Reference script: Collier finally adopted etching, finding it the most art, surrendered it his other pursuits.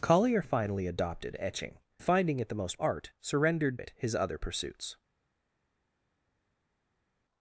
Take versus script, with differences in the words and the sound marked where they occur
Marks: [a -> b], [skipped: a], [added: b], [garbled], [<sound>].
Collier finally adopted etching, finding it the most art, surrendered it his other pursuits.